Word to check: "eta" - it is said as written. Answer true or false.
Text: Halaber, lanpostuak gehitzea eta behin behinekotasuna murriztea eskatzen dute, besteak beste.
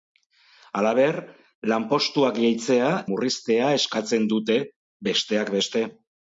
false